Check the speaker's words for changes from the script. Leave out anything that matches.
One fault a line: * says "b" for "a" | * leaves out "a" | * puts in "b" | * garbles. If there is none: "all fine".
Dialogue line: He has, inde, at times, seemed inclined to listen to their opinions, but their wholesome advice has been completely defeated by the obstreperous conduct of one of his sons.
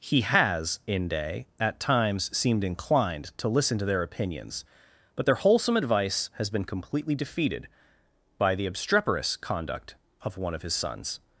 all fine